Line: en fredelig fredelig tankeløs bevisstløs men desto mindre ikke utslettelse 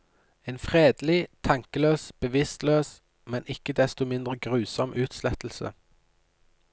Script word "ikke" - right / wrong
wrong